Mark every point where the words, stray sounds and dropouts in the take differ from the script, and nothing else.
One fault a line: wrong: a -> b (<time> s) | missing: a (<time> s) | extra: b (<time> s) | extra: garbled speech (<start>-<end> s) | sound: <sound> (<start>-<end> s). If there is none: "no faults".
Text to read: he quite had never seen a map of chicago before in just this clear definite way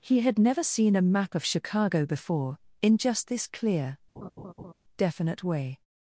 missing: quite (0.2 s)
sound: laugh (4.2-4.7 s)